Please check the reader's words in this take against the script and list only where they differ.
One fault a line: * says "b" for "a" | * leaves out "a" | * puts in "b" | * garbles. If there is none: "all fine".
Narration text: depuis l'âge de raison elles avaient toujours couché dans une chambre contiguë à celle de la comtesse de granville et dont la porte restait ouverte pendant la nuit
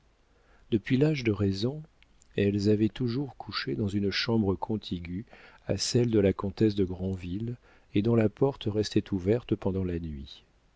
all fine